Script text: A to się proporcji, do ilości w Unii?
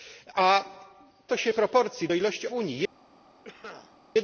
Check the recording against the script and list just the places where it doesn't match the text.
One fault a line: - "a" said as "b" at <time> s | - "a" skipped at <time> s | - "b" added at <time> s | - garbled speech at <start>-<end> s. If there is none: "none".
none